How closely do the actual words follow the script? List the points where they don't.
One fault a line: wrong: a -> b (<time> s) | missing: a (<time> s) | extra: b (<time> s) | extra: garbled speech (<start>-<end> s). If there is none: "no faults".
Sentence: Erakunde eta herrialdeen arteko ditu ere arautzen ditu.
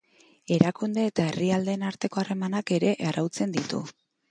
wrong: ditu -> harremanak (2.2 s)